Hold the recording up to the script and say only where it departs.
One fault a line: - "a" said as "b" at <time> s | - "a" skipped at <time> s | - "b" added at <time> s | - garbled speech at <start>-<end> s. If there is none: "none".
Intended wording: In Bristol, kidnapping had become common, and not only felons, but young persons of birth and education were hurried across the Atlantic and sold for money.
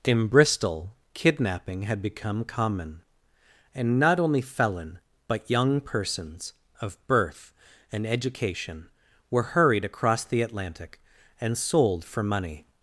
- "felons" said as "felon" at 4.4 s